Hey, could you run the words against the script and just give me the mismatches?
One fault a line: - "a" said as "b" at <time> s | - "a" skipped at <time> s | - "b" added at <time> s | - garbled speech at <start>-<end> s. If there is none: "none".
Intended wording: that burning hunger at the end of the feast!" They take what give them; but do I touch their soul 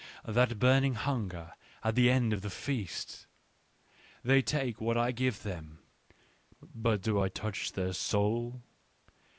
- "I" added at 5.0 s